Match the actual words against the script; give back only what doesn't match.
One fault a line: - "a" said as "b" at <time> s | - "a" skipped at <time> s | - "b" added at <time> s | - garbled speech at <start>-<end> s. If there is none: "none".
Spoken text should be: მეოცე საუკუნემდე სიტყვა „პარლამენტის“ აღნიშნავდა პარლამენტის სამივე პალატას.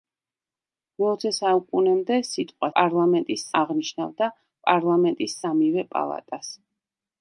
none